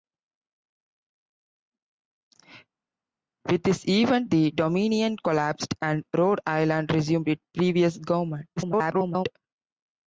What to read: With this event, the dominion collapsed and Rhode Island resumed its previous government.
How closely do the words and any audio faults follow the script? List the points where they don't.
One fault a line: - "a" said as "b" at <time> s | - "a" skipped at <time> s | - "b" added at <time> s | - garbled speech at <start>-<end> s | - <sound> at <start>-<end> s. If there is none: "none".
- garbled speech at 8.6-9.3 s